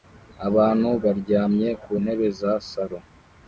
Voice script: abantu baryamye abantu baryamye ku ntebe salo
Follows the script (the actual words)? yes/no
no